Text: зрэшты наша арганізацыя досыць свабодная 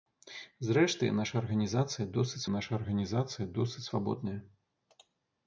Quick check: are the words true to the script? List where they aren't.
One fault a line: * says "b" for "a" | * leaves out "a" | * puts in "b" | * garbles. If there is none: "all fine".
* puts in "наша арганізацыя досыць"